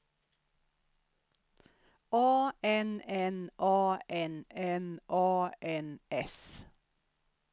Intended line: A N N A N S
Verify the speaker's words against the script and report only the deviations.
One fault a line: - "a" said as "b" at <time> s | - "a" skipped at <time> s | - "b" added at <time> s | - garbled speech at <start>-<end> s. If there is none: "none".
- "N A N" added at 4.5 s